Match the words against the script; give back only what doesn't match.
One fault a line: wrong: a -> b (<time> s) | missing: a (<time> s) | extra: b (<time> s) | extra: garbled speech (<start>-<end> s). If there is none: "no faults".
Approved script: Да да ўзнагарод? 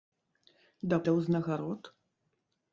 no faults